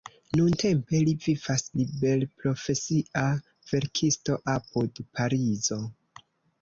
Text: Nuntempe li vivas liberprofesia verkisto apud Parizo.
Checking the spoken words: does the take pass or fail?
pass